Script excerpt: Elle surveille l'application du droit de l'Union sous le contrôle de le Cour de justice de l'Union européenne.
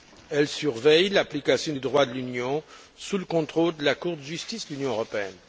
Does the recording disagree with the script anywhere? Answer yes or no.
yes